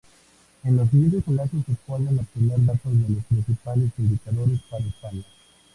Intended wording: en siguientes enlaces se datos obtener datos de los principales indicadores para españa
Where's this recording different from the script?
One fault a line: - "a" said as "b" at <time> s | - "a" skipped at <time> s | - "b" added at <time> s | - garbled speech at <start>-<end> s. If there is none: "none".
- "los" added at 0.8 s
- "datos" said as "pueden" at 1.9 s